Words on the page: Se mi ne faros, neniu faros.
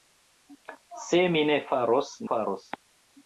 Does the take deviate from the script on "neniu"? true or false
true